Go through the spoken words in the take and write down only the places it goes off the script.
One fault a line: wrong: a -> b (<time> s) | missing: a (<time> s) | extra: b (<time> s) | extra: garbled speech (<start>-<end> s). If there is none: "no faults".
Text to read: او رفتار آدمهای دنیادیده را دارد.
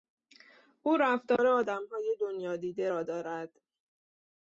no faults